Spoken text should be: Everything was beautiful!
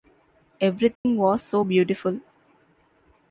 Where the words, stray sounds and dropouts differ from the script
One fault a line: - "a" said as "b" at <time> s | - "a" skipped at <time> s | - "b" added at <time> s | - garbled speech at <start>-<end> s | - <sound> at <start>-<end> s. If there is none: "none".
- dropout at 1.0-1.1 s
- "so" added at 1.4 s